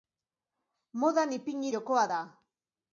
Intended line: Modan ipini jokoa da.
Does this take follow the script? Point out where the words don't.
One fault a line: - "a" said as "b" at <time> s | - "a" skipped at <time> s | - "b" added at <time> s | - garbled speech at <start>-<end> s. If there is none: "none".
none